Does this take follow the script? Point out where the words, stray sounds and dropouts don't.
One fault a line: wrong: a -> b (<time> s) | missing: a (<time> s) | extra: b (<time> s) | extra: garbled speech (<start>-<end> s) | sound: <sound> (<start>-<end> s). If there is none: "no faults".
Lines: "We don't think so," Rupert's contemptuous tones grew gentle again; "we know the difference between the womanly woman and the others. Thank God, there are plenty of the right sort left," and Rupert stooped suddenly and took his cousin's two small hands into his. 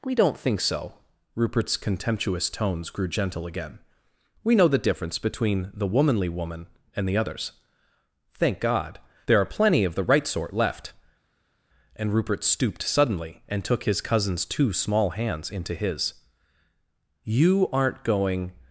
extra: You aren't going (17.2 s)